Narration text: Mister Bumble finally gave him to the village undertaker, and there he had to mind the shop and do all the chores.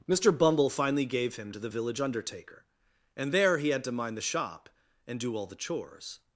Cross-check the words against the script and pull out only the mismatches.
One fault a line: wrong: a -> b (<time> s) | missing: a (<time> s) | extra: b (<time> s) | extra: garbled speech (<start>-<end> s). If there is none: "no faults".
no faults